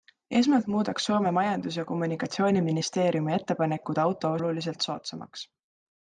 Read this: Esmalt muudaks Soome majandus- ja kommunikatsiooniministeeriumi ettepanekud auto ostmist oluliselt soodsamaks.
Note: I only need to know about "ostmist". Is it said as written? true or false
false